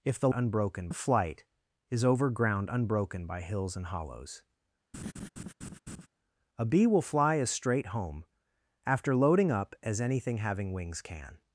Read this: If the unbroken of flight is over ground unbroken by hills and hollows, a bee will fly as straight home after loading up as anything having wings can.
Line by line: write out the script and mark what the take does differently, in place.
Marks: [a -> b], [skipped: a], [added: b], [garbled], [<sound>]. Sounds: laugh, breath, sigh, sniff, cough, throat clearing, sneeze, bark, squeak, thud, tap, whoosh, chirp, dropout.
If the unbroken of flight is over ground unbroken by hills and hollows, [laugh] a bee will fly as straight home after loading up as anything having wings can.